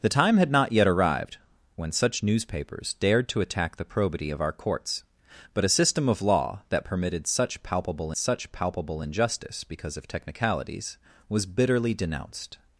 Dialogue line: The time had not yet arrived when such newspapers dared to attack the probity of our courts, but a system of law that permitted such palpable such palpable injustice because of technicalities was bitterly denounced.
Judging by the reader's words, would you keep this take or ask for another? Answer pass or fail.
pass